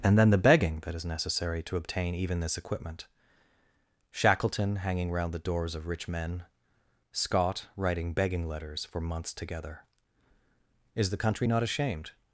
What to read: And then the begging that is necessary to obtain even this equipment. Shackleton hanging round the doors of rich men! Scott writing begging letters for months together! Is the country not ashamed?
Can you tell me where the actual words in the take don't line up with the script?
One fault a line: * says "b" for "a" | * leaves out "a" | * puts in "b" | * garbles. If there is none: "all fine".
all fine